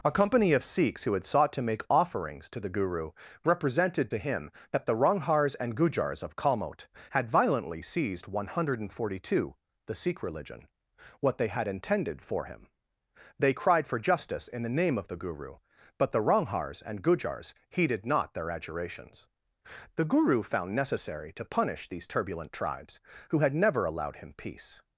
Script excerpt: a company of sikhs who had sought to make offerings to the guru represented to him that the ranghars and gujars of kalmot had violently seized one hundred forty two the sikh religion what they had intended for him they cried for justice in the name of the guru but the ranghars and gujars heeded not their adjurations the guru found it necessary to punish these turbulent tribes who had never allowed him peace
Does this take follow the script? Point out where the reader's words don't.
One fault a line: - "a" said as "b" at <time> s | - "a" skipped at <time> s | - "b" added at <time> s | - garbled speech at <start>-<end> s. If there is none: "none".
- "it" skipped at 20.7 s